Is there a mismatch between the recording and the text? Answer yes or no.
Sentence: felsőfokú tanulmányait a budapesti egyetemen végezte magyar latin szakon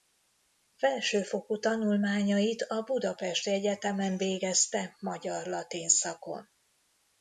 no